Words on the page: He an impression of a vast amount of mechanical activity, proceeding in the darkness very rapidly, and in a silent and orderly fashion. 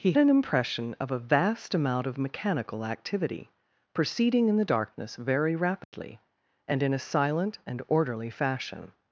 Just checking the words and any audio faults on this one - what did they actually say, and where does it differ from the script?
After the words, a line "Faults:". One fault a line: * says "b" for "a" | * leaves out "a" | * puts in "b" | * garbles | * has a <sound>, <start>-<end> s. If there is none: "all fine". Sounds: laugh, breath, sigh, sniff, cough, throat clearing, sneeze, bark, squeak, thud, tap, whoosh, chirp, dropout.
He an impression of a vast amount of mechanical activity, proceeding in the darkness very rapidly, and in a silent and orderly fashion.
Faults:
* has a dropout, 5.8-5.9 s